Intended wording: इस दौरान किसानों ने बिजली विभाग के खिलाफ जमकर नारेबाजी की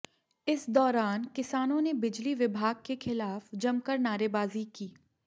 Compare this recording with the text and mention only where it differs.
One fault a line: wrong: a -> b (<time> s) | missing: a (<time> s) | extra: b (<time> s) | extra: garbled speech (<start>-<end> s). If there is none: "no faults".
no faults